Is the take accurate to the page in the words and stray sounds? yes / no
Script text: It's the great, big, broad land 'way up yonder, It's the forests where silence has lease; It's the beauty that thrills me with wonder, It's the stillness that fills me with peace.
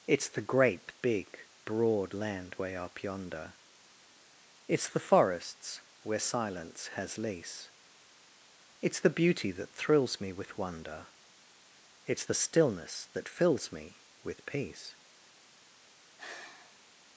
no